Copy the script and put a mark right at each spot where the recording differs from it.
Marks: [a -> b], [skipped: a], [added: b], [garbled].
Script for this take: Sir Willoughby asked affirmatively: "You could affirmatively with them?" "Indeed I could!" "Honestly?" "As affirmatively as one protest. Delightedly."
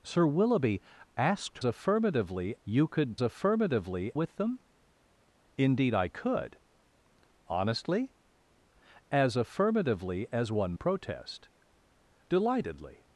Sir Willoughby asked affirmatively: "You could affirmatively with them?" "Indeed I could!" "Honestly?" "As affirmatively as one protest. Delightedly."